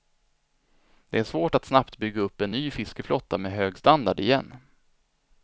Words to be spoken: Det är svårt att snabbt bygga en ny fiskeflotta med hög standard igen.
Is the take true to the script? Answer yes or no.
no